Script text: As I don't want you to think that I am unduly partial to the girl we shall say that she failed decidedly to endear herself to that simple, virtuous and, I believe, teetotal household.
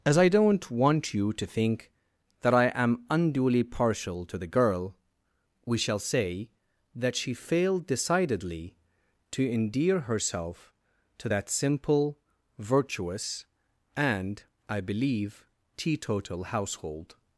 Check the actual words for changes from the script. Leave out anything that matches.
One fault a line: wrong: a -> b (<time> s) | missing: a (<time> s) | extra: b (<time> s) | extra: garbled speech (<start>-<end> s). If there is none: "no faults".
no faults